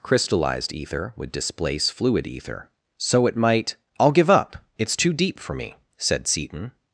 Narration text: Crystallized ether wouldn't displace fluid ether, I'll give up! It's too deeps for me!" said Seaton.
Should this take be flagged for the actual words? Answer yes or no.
yes